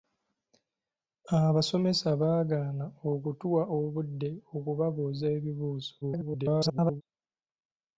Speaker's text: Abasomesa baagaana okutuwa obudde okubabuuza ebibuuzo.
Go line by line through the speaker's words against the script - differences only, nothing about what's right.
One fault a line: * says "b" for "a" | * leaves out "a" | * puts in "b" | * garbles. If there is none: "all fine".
* garbles